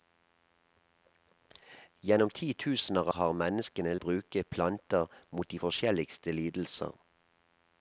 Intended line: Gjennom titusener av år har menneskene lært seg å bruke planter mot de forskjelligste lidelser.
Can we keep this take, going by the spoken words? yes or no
no